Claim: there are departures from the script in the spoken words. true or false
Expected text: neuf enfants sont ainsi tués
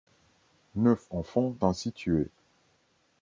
true